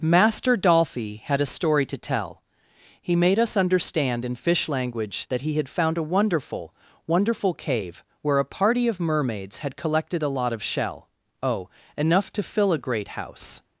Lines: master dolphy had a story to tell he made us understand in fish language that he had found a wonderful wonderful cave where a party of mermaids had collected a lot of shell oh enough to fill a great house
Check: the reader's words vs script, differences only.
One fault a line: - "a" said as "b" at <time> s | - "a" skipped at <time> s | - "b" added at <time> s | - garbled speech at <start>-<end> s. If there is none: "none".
none